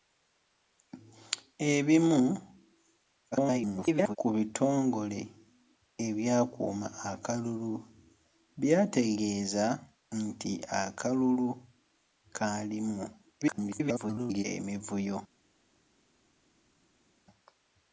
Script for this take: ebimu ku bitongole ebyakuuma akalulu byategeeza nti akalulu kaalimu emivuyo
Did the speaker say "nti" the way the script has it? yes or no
yes